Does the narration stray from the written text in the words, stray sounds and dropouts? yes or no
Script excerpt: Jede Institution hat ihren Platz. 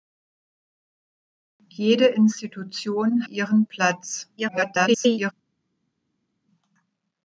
yes